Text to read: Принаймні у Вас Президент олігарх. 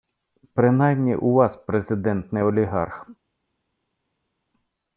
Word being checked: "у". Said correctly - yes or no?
yes